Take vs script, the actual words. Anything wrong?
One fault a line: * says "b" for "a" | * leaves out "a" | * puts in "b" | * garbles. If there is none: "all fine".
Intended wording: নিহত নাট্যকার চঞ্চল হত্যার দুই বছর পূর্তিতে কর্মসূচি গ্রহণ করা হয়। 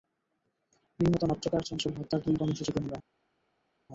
* leaves out "বছর পূর্তিতে"
* leaves out "করা"